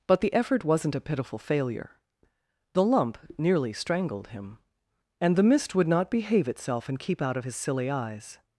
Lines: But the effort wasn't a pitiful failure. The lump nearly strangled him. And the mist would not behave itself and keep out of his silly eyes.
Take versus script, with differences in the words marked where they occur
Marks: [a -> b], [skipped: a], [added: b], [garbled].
But the effort wasn't a pitiful failure. The lump nearly strangled him. And the mist would not behave itself and keep out of his silly eyes.